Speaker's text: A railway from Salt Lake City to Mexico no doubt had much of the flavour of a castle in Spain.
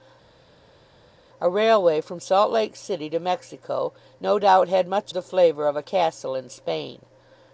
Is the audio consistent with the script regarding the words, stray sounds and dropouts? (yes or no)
no